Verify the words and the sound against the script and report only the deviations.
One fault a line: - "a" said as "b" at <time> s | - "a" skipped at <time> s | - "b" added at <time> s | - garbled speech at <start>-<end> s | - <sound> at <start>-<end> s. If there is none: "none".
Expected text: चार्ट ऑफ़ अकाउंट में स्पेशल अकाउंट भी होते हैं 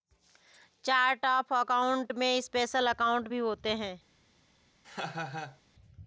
- laugh at 4.8-5.6 s